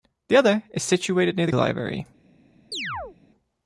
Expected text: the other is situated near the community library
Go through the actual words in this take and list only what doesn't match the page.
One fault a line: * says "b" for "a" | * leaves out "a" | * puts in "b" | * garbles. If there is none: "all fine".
* leaves out "community"